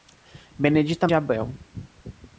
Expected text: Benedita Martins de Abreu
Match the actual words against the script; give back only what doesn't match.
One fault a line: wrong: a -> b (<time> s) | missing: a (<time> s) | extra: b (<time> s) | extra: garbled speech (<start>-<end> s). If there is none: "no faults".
missing: Martins (1.1 s)